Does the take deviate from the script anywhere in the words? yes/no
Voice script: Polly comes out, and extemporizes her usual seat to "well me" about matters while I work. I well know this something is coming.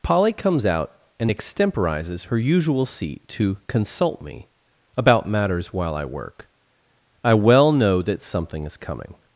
yes